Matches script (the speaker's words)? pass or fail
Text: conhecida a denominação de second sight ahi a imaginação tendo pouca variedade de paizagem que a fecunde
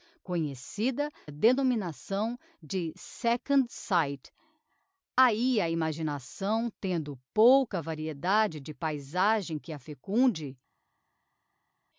pass